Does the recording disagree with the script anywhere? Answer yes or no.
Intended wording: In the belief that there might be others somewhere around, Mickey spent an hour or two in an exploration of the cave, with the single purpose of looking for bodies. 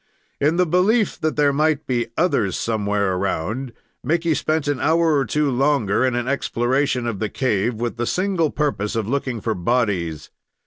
yes